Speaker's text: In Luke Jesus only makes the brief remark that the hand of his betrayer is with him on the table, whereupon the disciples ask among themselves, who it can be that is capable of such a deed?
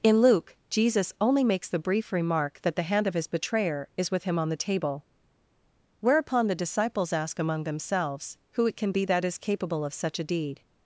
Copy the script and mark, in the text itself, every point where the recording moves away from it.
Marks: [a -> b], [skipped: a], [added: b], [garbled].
In Luke Jesus only makes the brief remark that the hand of his betrayer is with him on the table, whereupon the disciples ask among themselves, who it can be that is capable of such a deed?